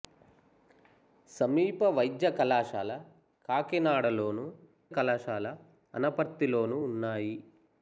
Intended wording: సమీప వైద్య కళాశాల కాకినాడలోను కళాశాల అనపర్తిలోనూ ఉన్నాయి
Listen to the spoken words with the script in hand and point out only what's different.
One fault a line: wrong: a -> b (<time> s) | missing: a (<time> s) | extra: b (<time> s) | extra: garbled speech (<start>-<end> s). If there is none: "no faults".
no faults